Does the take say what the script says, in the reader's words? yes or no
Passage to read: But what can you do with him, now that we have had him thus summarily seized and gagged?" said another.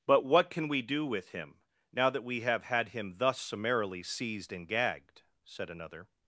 no